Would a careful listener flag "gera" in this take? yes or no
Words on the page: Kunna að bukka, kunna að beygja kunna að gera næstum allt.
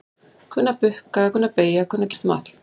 yes